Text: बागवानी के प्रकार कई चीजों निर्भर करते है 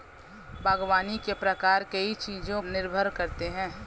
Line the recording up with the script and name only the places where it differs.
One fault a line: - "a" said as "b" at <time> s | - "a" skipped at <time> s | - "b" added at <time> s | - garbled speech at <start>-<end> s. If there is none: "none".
none